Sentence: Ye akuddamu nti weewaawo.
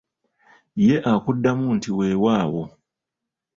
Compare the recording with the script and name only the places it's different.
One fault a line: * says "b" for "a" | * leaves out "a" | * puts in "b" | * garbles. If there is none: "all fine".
all fine